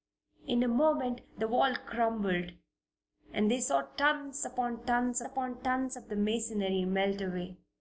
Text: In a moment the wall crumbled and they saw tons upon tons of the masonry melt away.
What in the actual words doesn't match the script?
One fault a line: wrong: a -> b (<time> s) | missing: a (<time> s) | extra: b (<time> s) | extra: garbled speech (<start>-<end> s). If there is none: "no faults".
extra: upon tons (5.2 s)